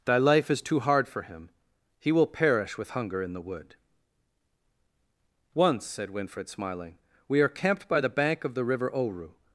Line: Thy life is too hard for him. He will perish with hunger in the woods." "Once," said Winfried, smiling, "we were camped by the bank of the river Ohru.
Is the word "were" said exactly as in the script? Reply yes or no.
no